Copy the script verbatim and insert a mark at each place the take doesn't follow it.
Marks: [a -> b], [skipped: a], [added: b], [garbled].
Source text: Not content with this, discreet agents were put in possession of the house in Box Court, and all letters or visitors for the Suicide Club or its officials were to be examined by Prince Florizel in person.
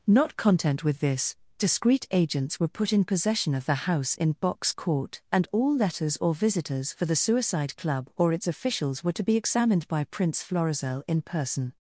Not content with this, discreet agents were put in possession of the house in Box Court, and all letters or visitors for the Suicide Club or its officials were to be examined by Prince Florizel in person.